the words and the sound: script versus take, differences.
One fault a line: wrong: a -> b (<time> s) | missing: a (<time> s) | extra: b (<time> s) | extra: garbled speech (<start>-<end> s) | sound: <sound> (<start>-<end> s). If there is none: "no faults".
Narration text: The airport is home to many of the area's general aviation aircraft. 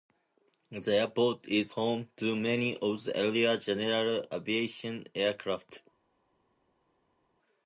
no faults